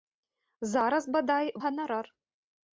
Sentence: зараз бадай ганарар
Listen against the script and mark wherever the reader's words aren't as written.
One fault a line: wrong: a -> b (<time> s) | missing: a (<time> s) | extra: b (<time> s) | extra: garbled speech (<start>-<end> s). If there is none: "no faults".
no faults